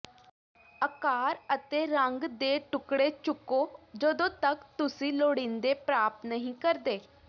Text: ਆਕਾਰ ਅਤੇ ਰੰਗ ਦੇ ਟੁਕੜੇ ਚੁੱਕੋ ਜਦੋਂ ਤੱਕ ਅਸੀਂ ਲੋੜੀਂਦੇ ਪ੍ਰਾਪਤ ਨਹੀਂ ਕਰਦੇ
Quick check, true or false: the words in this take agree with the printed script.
false